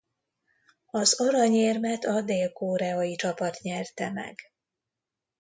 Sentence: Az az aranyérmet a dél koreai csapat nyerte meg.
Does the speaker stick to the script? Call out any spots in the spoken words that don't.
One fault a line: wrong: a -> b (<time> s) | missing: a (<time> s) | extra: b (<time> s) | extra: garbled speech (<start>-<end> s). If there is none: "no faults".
missing: az (1.2 s)